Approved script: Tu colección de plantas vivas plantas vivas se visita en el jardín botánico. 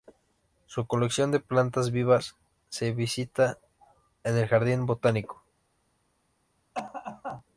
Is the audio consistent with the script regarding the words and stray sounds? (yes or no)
no